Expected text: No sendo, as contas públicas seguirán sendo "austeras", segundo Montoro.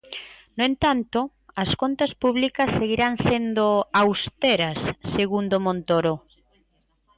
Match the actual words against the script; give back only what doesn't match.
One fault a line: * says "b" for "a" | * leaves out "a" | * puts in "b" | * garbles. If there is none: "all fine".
* says "entanto" for "sendo"